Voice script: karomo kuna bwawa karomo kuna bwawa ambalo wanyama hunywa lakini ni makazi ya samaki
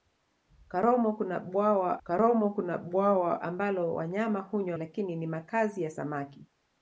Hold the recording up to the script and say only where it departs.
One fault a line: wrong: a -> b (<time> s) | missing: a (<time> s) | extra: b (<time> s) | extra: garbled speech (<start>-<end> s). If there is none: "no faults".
no faults